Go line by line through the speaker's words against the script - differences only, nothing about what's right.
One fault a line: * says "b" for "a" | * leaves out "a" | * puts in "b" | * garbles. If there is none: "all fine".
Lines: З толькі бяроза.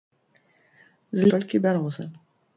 all fine